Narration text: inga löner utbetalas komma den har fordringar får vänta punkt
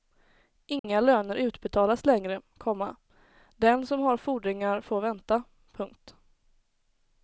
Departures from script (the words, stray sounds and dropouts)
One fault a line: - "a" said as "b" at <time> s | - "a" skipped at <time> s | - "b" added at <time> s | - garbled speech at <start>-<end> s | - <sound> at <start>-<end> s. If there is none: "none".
- dropout at 0.8-0.8 s
- "längre" added at 2.0 s
- "som" added at 3.9 s